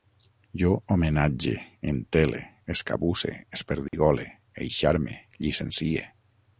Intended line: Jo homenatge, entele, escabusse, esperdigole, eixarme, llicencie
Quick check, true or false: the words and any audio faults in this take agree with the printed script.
false